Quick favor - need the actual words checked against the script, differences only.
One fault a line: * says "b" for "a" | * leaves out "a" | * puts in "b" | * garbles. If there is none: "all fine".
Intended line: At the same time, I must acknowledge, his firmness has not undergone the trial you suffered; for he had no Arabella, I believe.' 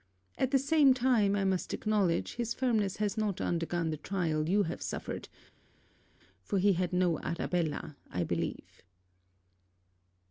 * puts in "have"